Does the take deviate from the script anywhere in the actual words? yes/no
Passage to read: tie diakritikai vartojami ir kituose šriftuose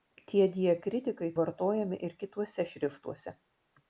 no